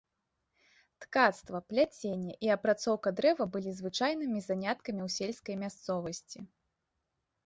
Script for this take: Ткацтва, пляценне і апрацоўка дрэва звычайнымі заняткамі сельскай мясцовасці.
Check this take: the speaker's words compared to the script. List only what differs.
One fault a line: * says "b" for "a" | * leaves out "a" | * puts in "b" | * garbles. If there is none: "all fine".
* puts in "былі"
* puts in "ў"